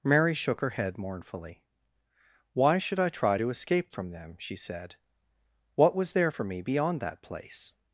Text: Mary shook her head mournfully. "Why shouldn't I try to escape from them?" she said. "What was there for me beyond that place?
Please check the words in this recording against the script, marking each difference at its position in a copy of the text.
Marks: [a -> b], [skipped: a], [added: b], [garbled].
Mary shook her head mournfully. "Why [shouldn't -> should] I try to escape from them?" she said. "What was there for me beyond that place?